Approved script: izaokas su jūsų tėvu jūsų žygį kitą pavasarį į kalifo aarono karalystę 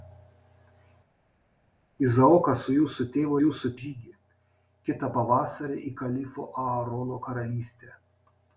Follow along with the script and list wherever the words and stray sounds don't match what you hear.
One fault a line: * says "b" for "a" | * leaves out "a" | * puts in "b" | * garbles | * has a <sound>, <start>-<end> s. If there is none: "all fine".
all fine